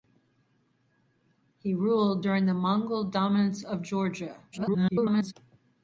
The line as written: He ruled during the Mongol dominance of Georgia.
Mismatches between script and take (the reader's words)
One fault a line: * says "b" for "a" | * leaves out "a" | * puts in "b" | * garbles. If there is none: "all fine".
* garbles